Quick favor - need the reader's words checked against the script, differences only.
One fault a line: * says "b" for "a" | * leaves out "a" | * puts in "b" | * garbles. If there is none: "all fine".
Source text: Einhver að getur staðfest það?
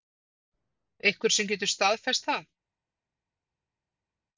* says "sem" for "að"